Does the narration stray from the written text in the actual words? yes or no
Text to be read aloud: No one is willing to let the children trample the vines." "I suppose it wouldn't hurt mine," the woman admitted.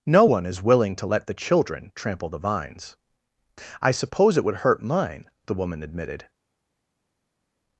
yes